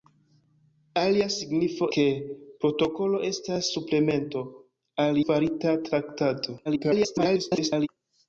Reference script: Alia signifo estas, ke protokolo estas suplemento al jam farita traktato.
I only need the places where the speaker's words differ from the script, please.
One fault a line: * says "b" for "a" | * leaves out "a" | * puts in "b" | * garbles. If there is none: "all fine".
* leaves out "estas"
* leaves out "jam"
* garbles